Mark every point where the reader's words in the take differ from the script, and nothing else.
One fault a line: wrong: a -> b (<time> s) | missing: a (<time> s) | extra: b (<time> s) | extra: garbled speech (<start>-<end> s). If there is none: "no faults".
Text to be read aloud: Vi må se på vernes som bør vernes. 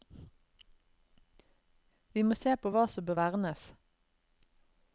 wrong: vernes -> hva (2.7 s)